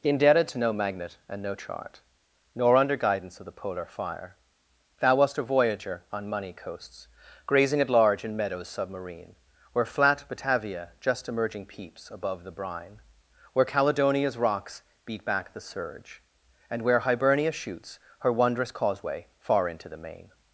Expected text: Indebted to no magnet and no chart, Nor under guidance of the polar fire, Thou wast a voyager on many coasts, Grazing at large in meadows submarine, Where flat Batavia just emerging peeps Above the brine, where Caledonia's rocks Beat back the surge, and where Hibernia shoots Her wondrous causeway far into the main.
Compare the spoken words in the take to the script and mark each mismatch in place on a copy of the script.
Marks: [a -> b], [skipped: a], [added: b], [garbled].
Indebted to no magnet and no chart, Nor under guidance of the polar fire, Thou wast a voyager on [many -> money] coasts, Grazing at large in meadows submarine, Where flat Batavia just emerging peeps Above the brine, where Caledonia's rocks Beat back the surge, and where Hibernia shoots Her wondrous causeway far into the main.